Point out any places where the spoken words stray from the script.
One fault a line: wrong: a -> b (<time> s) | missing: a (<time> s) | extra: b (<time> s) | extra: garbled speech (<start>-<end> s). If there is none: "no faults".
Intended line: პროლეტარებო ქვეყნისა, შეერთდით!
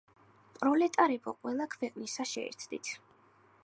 extra: ყველა (1.4 s)